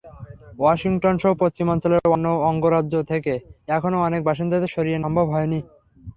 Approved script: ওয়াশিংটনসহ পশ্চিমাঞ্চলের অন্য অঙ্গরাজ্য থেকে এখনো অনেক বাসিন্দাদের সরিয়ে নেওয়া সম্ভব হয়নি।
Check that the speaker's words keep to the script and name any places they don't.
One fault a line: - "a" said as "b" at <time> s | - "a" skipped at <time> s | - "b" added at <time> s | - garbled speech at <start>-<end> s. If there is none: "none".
- "নেওয়া" skipped at 5.0 s